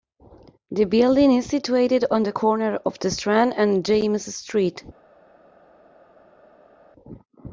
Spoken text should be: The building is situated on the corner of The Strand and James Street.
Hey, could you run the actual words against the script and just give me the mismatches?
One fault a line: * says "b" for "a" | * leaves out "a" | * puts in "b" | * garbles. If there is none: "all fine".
all fine